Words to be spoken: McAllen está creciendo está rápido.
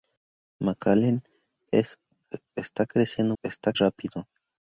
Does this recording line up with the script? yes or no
yes